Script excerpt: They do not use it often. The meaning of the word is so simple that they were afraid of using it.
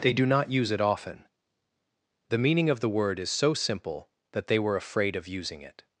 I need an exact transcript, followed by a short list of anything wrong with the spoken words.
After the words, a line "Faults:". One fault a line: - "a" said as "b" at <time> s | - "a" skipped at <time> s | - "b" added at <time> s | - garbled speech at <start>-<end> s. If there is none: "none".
They do not use it often. The meaning of the word is so simple that they were afraid of using it.
Faults:
none